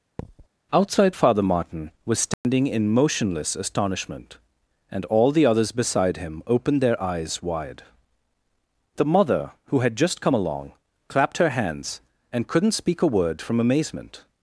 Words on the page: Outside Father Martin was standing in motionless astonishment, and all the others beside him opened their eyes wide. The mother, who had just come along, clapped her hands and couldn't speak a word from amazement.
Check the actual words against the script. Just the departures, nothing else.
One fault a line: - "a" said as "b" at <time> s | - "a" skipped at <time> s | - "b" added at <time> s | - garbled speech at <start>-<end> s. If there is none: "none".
none